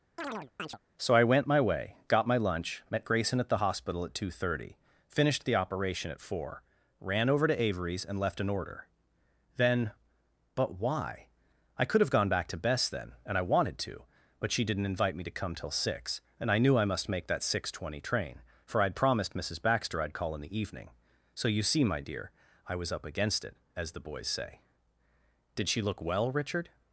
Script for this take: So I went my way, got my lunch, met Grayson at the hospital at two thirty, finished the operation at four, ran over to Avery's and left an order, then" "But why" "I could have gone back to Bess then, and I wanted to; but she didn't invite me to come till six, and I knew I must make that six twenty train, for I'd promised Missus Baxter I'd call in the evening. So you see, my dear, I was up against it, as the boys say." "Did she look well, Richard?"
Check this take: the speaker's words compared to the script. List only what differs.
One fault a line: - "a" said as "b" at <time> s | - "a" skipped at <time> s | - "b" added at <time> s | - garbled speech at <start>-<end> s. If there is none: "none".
none